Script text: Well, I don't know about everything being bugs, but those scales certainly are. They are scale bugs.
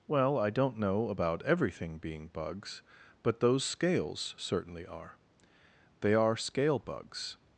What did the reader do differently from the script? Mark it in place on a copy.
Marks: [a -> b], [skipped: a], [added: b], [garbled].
Well, I don't know about everything being bugs, but those scales certainly are. They are scale bugs.